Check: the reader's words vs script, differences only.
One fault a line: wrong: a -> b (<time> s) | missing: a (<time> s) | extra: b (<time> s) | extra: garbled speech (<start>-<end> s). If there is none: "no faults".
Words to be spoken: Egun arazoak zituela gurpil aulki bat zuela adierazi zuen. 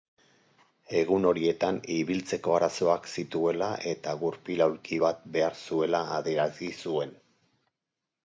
extra: horietan ibiltzeko (1.3 s)
extra: eta (3.9 s)
extra: behar (5.4 s)